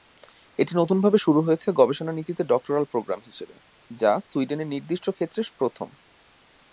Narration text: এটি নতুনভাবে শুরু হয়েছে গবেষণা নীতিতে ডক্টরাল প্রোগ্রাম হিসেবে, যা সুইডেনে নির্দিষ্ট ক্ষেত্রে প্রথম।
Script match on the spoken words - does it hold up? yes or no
yes